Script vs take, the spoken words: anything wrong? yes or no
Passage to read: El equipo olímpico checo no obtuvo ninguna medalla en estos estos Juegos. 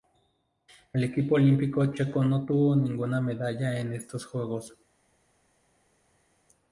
yes